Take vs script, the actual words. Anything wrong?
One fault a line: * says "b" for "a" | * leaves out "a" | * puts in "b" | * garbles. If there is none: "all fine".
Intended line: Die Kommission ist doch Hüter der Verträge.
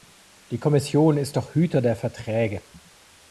all fine